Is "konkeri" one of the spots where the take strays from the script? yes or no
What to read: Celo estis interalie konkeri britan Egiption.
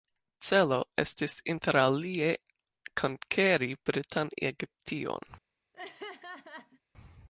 no